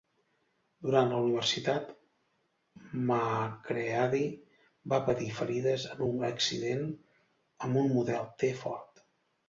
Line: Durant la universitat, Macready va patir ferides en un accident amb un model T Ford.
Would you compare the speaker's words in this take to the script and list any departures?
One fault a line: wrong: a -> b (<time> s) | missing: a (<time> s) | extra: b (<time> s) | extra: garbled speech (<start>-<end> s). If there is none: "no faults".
no faults